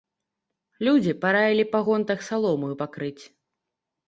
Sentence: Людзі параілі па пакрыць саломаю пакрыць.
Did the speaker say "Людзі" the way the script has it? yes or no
yes